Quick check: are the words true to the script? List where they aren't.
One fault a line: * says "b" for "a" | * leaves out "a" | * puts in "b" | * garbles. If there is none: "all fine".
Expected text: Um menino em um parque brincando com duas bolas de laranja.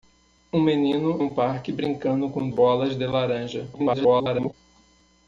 * leaves out "em"
* leaves out "duas"
* garbles